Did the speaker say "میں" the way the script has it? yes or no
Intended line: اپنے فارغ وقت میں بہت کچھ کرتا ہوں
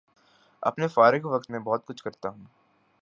yes